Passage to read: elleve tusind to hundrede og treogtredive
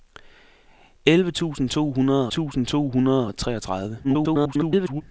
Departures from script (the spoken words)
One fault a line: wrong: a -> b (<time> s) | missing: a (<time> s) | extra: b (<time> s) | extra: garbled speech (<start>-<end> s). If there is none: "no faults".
extra: tusind to hundrede (2.3 s)
extra: garbled speech (4.0-5.0 s)